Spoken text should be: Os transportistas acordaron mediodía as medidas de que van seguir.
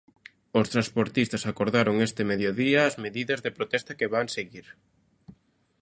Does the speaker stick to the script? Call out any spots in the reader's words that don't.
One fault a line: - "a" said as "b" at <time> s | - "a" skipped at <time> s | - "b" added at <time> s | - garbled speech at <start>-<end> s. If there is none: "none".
- "este" added at 2.1 s
- "protesta" added at 3.6 s